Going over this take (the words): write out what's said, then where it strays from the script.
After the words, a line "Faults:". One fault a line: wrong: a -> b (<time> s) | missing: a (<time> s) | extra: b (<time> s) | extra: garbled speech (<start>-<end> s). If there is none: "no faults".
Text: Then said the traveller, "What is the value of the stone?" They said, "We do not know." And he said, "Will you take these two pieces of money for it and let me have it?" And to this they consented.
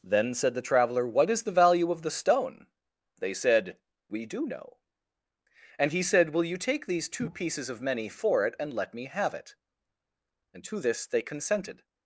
Then said the traveller, "What is the value of the stone?" They said, "We do know." And he said, "Will you take these two pieces of many for it and let me have it?" And to this they consented.
Faults:
missing: not (4.5 s)
wrong: money -> many (7.8 s)